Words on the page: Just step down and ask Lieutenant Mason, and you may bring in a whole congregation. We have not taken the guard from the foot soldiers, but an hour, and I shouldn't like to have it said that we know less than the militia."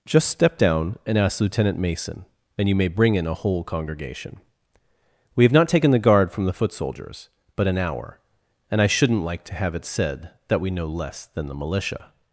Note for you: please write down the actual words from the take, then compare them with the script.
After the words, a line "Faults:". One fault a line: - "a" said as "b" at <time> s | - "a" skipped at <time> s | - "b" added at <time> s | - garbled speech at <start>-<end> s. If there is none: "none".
Just step down and ask Lieutenant Mason, and you may bring in a whole congregation. We have not taken the guard from the foot soldiers, but an hour, and I shouldn't like to have it said that we know less than the militia."
Faults:
none